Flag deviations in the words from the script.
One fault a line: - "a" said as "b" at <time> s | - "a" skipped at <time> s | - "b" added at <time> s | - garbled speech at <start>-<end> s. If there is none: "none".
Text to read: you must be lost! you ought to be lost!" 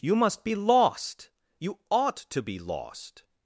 none